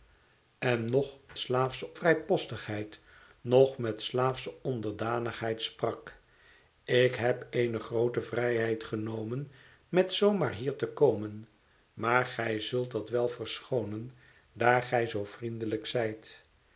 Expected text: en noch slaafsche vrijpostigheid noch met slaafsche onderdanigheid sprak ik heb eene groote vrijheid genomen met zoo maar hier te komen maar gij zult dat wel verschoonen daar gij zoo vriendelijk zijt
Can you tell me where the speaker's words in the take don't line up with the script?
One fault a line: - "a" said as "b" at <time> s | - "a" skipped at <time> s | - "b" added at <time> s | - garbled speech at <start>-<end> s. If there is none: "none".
none